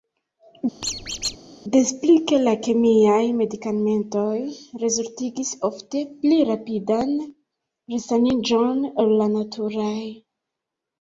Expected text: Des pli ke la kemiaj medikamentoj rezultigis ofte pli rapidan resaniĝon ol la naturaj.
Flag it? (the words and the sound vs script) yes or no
yes